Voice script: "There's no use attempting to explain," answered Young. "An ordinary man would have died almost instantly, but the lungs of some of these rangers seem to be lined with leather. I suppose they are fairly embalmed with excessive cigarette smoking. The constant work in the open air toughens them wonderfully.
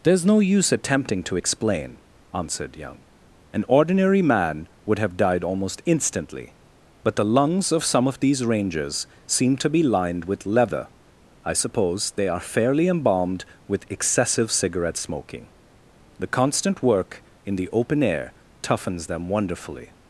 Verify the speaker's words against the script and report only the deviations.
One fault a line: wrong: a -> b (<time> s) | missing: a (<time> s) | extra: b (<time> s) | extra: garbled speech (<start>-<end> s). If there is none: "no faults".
no faults